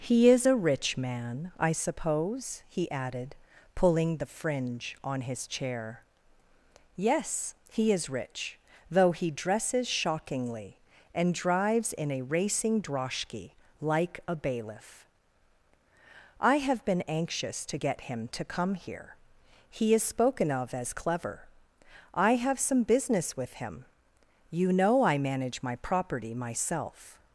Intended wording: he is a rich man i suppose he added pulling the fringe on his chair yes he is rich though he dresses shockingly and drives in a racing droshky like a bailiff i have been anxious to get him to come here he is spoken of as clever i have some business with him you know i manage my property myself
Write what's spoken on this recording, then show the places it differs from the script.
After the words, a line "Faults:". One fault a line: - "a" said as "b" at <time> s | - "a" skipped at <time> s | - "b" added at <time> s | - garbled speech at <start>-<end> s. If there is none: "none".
he is a rich man i suppose he added pulling the fringe on his chair yes he is rich though he dresses shockingly and drives in a racing droshky like a bailiff i have been anxious to get him to come here he is spoken of as clever i have some business with him you know i manage my property myself
Faults:
none